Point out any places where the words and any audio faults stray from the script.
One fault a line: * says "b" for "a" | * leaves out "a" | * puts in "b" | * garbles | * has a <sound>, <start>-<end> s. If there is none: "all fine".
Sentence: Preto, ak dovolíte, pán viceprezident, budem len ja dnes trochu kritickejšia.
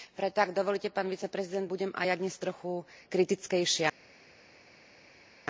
* says "aj" for "len"